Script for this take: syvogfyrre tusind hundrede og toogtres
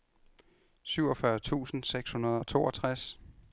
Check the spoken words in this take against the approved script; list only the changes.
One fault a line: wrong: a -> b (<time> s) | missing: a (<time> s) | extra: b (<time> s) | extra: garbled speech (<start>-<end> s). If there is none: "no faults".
extra: seks (1.8 s)